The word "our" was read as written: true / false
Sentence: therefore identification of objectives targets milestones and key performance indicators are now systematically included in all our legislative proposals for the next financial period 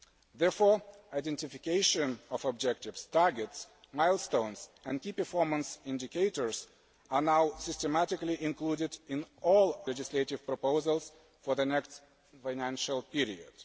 false